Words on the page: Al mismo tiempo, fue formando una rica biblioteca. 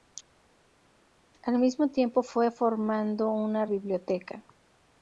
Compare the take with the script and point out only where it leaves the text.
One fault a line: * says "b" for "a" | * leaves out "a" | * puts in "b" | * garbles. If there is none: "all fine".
* leaves out "rica"